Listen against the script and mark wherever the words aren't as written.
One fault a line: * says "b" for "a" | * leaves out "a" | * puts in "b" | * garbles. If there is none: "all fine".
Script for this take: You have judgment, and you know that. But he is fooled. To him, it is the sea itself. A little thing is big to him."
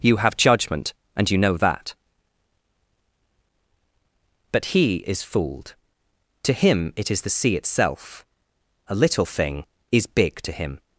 all fine